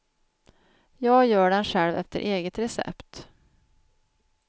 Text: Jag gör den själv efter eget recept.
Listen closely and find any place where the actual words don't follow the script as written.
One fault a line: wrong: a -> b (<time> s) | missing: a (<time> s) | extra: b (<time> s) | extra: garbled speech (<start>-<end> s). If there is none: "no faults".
no faults